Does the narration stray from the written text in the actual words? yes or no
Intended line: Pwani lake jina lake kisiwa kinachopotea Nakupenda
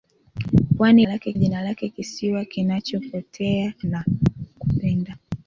no